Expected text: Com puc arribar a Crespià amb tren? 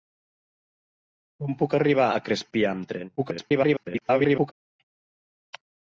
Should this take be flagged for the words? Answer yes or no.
yes